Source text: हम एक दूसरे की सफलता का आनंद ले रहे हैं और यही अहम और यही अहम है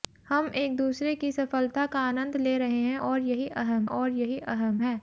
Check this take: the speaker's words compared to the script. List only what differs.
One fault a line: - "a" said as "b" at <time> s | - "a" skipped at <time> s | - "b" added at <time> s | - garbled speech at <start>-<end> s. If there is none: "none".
none